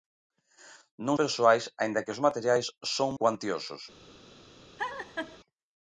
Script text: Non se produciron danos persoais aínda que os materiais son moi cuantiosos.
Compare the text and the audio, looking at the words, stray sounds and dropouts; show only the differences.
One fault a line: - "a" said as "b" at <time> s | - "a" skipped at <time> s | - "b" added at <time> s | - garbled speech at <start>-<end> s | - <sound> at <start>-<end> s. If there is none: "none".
- "se produciron danos" skipped at 1.2 s
- "moi" skipped at 3.1 s
- laugh at 4.8-5.4 s